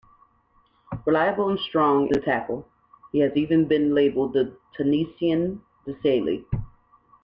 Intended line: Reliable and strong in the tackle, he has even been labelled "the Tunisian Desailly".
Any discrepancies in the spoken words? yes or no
yes